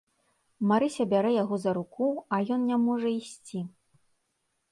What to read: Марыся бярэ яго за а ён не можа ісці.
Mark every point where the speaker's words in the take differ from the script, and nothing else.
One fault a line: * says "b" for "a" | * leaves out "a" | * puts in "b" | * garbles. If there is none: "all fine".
* puts in "руку"